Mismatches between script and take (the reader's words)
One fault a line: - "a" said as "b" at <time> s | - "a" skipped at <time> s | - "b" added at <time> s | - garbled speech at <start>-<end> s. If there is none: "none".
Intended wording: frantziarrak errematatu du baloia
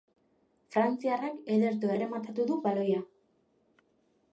- "ederto" added at 1.6 s